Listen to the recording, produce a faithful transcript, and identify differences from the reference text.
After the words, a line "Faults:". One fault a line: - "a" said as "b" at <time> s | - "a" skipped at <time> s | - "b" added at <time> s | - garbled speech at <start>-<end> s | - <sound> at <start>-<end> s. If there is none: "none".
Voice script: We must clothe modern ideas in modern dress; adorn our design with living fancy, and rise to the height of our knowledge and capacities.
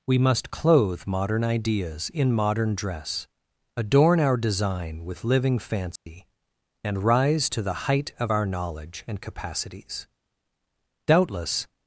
We must clothe modern ideas in modern dress; adorn our design with living fancy, and rise to the height of our knowledge and capacities. Doubtless
Faults:
- dropout at 6.0-6.1 s
- "Doubtless" added at 11.1 s